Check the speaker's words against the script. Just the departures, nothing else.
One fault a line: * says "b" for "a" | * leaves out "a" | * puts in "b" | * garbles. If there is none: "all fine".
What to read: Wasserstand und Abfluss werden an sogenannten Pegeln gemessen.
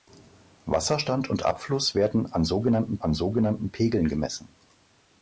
* puts in "an sogenannten"